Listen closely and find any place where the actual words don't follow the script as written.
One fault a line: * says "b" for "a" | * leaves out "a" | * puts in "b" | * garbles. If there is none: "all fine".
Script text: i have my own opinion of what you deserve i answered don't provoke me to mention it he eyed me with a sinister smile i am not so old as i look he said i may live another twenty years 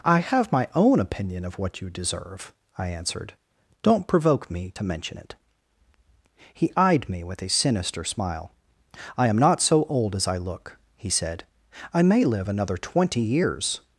all fine